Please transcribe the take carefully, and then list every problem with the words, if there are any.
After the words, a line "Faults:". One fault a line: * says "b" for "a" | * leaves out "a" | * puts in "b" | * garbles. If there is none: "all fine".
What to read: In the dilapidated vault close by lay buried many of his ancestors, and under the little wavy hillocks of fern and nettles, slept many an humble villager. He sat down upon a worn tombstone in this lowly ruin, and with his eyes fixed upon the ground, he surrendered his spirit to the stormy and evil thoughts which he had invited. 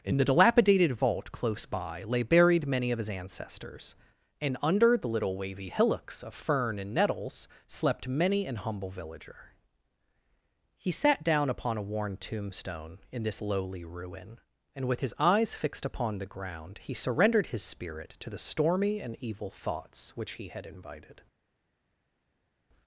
In the dilapidated vault close by lay buried many of his ancestors, and under the little wavy hillocks of fern and nettles, slept many an humble villager. He sat down upon a worn tombstone in this lowly ruin, and with his eyes fixed upon the ground, he surrendered his spirit to the stormy and evil thoughts which he had invited.
Faults:
all fine